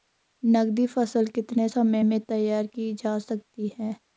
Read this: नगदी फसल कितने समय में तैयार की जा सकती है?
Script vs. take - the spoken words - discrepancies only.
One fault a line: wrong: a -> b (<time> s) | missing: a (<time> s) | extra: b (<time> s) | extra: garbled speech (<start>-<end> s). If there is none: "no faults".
no faults